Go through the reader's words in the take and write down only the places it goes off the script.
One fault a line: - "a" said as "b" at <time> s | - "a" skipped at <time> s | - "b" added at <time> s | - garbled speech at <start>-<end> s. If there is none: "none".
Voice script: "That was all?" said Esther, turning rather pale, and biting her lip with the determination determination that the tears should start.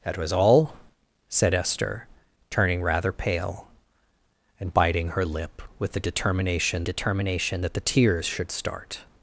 none